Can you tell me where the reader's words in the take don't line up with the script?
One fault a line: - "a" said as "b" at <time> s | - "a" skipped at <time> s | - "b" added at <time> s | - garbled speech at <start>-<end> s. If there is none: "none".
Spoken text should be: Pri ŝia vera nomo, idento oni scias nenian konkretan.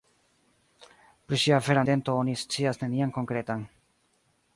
- "nomo" skipped at 1.9 s